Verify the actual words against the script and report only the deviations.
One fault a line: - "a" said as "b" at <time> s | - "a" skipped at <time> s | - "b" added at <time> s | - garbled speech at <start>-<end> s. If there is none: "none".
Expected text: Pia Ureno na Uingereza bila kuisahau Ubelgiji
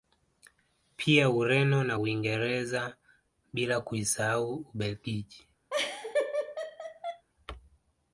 none